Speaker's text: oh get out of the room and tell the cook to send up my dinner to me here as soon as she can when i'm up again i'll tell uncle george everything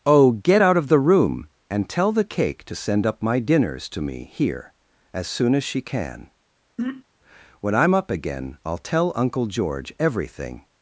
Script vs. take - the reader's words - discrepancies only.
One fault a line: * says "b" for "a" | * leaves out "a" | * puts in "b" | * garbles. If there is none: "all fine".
* says "cake" for "cook"
* says "dinners" for "dinner"